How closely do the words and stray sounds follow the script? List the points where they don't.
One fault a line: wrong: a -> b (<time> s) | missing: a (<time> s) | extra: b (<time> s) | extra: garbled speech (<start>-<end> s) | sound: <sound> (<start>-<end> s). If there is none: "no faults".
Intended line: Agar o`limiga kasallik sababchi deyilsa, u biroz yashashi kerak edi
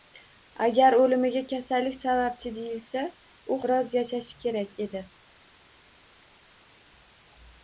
no faults